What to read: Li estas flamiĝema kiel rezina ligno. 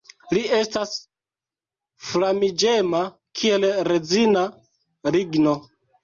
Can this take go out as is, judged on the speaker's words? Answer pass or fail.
pass